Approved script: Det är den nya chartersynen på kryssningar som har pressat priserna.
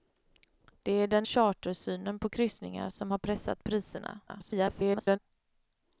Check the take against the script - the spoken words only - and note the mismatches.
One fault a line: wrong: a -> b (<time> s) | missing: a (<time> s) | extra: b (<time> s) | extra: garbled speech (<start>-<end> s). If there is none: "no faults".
missing: nya (1.3 s)
extra: garbled speech (4.3-5.2 s)